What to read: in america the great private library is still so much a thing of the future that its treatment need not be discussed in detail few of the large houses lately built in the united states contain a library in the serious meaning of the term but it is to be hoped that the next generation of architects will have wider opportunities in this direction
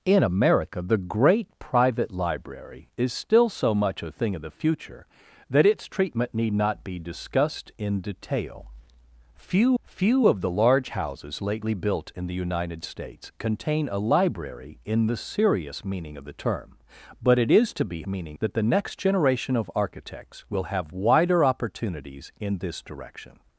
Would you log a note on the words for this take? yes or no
yes